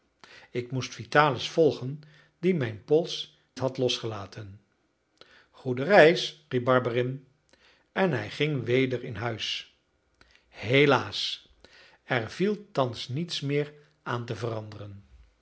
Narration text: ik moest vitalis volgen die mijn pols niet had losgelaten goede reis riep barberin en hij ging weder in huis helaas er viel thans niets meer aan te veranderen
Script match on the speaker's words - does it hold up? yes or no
no